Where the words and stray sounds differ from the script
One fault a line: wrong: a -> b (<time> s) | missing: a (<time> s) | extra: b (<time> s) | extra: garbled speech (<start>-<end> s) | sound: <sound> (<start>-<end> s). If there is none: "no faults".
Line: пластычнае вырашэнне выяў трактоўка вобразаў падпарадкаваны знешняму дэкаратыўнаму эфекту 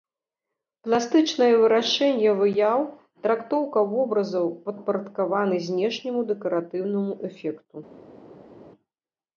no faults